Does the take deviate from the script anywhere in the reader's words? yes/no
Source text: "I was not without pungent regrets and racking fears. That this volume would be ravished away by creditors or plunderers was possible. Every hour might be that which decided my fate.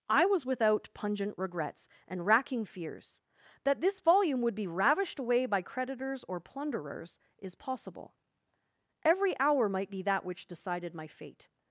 yes